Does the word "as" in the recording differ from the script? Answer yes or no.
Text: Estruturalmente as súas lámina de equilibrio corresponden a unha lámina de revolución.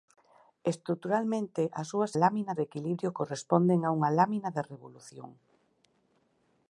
no